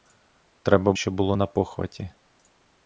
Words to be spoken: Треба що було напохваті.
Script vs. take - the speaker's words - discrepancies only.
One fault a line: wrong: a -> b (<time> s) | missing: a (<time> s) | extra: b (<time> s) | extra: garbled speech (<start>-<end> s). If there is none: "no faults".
no faults